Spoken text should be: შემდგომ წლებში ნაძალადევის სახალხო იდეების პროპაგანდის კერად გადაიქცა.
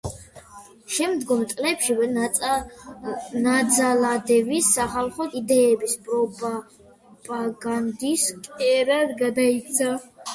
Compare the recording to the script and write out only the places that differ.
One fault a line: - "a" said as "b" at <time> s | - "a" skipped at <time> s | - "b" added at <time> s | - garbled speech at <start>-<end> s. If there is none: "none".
none